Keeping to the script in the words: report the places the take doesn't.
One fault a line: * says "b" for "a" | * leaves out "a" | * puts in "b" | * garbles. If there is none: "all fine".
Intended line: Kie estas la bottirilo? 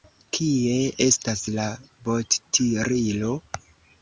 all fine